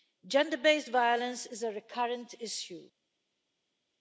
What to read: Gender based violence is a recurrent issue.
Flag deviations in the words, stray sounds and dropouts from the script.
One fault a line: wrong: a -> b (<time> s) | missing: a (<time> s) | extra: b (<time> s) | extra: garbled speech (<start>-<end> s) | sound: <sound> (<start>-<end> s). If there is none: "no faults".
no faults